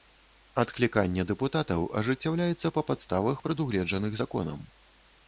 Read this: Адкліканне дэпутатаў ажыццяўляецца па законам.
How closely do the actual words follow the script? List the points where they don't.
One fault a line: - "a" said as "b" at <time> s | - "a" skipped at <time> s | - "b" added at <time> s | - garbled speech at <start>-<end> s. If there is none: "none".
- "падставах прадугледжаных" added at 2.9 s